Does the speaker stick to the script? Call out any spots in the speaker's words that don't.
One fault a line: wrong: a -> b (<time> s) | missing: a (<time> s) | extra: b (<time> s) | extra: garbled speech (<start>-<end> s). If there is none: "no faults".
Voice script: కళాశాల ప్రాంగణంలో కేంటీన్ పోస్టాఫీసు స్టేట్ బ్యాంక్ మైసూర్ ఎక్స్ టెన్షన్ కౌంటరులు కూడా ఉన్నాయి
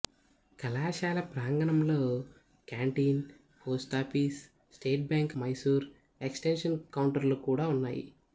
no faults